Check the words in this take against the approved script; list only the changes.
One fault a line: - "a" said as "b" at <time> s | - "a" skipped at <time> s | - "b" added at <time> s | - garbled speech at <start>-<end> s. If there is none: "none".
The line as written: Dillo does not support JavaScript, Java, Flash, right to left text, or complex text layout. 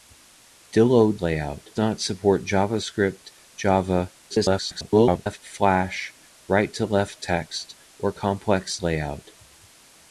- "does" said as "layout" at 1.2 s
- garbled speech at 4.3-5.4 s
- "text" skipped at 8.8 s